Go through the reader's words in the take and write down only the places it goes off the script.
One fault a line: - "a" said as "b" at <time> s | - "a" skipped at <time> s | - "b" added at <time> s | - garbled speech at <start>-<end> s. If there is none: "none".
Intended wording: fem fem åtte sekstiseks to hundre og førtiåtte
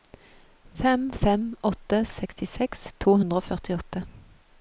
none